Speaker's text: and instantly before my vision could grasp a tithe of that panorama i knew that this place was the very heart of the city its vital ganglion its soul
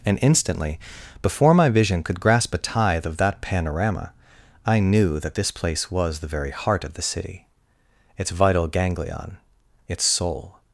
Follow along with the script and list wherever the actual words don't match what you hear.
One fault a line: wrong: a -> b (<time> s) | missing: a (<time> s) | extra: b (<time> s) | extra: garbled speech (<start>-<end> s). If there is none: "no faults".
no faults